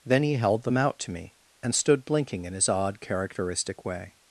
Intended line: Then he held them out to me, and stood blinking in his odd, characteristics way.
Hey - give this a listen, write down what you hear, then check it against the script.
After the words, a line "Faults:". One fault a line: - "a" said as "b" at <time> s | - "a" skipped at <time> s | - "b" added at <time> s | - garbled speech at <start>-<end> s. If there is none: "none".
Then he held them out to me, and stood blinking in his odd, characteristic way.
Faults:
- "characteristics" said as "characteristic" at 3.0 s